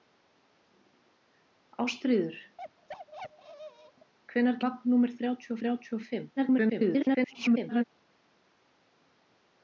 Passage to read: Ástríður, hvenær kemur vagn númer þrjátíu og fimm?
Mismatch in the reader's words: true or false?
true